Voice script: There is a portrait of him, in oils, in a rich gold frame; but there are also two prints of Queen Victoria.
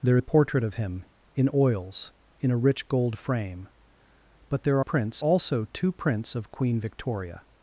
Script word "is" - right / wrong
wrong